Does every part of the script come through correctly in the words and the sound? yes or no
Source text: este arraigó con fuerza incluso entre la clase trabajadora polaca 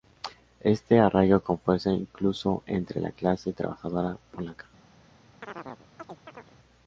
no